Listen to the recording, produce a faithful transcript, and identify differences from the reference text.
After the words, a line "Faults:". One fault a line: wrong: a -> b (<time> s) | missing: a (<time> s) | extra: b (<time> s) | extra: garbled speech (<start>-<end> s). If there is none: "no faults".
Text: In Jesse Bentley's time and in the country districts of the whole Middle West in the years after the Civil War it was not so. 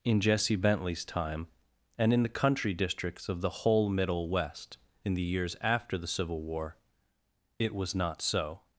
In Jesse Bentley's time and in the country districts of the whole Middle West in the years after the Civil War it was not so.
Faults:
no faults